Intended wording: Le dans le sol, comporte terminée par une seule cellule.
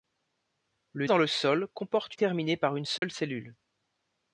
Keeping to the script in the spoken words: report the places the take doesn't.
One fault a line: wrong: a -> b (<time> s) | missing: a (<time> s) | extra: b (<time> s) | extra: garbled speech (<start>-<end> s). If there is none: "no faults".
no faults